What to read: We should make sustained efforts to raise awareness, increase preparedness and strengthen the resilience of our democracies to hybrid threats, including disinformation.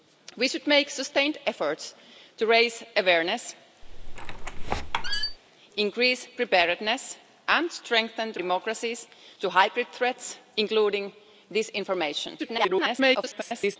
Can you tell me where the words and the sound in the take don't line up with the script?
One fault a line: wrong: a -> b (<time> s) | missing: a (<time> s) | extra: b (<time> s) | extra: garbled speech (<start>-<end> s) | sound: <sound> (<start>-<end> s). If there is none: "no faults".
sound: squeak (3.8-5.4 s)
missing: resilience of our (8.4 s)
extra: garbled speech (12.4-13.8 s)